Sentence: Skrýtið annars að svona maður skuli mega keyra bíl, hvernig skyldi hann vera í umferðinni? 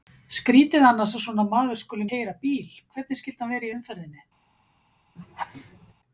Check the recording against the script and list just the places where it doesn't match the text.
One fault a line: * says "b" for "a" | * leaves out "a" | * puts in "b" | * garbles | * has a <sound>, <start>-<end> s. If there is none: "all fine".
* leaves out "mega"
* has a laugh, 5.2-5.9 s